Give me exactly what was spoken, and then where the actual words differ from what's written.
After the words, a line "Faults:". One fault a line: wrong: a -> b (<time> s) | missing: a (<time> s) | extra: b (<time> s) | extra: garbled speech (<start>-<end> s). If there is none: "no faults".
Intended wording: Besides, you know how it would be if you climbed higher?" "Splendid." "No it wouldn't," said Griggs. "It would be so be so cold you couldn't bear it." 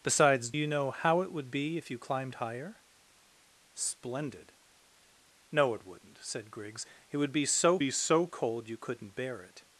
Besides, you know how it would be if you climbed higher?" "Splendid." "No it wouldn't," said Griggs. "It would be so be so cold you couldn't bear it."
Faults:
no faults